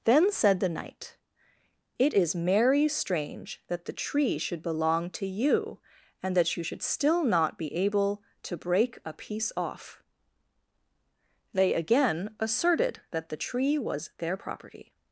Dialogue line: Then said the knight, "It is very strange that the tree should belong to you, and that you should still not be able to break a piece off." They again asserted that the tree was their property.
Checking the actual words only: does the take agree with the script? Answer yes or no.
no